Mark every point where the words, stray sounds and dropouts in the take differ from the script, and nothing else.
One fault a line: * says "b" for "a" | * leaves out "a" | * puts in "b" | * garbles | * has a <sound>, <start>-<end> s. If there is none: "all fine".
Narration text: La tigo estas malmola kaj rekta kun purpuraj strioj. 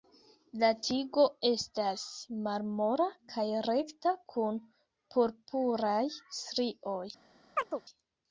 * has a chirp, 7.6-7.8 s